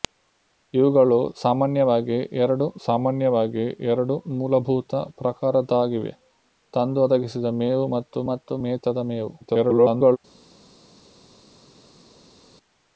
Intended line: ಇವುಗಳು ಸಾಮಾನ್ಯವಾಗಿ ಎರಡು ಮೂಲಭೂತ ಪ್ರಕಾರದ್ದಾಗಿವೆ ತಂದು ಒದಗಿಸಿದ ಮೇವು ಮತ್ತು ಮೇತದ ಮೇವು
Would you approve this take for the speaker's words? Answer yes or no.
no